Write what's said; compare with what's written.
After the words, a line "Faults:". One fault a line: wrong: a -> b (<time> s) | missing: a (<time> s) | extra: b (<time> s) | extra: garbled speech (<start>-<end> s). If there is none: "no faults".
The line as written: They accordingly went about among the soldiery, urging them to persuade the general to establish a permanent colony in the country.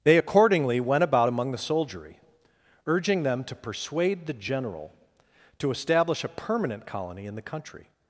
They accordingly went about among the soldiery, urging them to persuade the general to establish a permanent colony in the country.
Faults:
no faults